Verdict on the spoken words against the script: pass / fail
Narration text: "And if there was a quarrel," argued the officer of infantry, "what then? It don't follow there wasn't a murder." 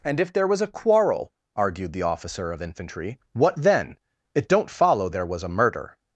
fail